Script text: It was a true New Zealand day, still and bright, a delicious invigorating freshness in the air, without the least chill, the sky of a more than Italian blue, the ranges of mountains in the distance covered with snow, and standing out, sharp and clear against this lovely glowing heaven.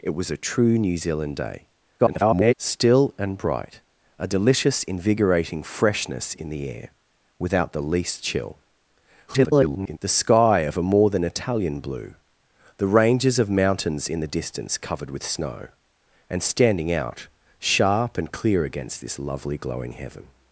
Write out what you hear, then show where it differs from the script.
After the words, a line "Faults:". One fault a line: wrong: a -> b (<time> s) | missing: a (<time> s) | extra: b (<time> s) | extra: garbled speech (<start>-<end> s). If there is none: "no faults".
It was a true New Zealand day, [garbled] still and bright, a delicious invigorating freshness in the air, without the least chill, [garbled] the sky of a more than Italian blue, the ranges of mountains in the distance covered with snow, and standing out, sharp and clear against this lovely glowing heaven.
Faults:
extra: garbled speech (2.0-2.5 s)
extra: garbled speech (9.3-10.0 s)